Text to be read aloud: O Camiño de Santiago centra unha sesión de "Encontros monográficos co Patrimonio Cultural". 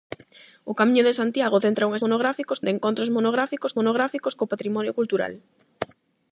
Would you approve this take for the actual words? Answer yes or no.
no